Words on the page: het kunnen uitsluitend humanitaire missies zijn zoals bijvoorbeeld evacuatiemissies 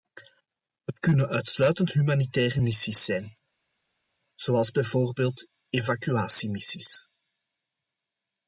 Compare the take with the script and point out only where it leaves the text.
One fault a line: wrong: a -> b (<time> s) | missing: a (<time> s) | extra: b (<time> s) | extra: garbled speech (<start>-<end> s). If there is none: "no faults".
no faults